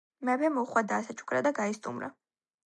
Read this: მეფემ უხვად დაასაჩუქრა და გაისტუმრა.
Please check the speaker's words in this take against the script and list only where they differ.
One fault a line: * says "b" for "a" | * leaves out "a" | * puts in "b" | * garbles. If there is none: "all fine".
all fine